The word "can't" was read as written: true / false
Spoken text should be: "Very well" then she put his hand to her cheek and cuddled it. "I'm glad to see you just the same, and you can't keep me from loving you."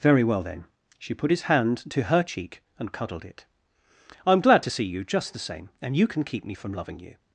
false